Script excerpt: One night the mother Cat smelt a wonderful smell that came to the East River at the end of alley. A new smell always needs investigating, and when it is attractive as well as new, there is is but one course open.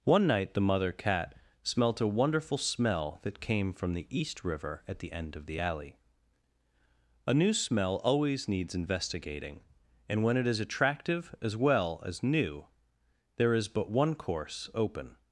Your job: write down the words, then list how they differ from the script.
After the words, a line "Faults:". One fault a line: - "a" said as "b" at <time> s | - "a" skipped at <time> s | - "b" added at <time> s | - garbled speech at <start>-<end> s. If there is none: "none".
One night the mother Cat smelt a wonderful smell that came from the East River at the end of the alley. A new smell always needs investigating, and when it is attractive as well as new, there is but one course open.
Faults:
- "to" said as "from" at 3.7 s
- "the" added at 5.5 s
- "is" skipped at 13.7 s